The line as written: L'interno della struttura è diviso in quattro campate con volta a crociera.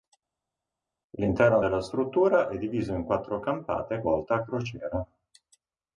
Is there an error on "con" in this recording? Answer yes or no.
yes